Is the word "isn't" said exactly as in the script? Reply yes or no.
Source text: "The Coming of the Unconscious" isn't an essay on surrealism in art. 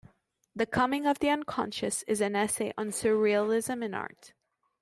no